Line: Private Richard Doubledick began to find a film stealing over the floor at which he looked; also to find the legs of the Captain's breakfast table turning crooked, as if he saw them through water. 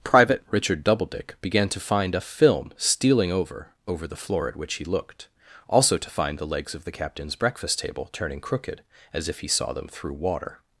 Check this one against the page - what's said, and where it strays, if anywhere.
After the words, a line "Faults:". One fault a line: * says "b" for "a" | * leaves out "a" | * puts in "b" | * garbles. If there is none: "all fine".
Private Richard Doubledick began to find a film stealing over over the floor at which he looked; also to find the legs of the Captain's breakfast table turning crooked, as if he saw them through water.
Faults:
* puts in "over"